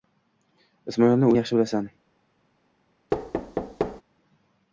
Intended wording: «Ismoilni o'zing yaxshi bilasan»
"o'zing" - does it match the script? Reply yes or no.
no